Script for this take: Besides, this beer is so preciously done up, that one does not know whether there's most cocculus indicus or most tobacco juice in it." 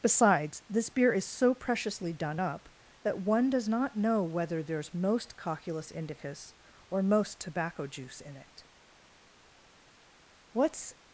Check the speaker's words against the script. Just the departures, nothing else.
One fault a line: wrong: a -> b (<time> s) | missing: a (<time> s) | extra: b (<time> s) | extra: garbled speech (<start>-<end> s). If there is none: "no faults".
extra: What's (10.5 s)